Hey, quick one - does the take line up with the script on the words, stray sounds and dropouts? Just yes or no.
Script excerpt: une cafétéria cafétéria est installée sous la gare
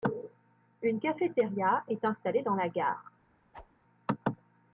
no